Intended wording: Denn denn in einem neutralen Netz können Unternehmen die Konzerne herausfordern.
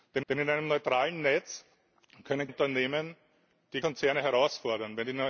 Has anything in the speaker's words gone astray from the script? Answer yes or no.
no